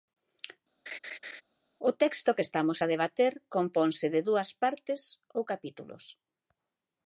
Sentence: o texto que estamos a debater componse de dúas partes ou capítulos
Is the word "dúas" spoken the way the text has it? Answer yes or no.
yes